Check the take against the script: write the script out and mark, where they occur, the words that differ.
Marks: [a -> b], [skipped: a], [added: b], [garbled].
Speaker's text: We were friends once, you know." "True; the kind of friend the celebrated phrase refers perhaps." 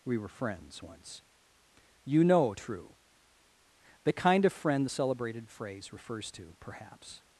We were friends once, you know." "True; the kind of friend the celebrated phrase refers [added: to] perhaps."